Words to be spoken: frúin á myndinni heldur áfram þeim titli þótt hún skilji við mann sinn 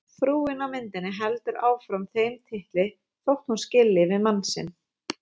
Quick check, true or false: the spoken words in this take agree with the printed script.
true